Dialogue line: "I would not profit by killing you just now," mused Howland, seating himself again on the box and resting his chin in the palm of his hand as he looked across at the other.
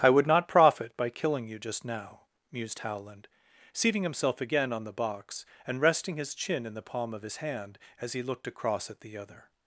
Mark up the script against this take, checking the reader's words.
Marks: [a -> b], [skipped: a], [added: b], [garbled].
"I would not profit by killing you just now," mused Howland, seating himself again on the box and resting his chin in the palm of his hand as he looked across at the other.